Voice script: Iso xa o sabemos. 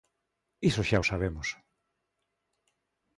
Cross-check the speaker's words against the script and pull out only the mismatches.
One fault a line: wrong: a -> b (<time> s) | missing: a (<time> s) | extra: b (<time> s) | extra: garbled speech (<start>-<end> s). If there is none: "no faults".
no faults